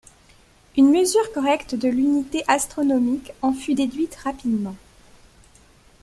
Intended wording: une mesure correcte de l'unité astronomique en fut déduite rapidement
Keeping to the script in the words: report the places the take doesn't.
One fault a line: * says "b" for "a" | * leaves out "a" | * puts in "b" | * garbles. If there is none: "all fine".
all fine